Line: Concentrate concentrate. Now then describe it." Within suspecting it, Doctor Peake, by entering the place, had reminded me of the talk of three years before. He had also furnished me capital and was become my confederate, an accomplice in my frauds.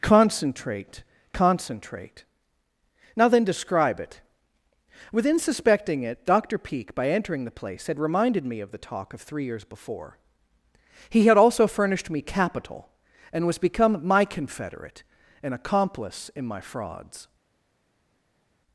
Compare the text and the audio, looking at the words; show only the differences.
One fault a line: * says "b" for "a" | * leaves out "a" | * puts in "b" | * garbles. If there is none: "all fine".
all fine